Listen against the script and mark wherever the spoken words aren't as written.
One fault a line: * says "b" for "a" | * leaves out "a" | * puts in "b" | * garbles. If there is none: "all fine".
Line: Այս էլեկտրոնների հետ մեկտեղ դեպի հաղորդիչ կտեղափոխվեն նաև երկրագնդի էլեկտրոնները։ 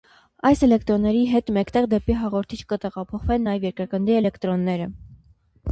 all fine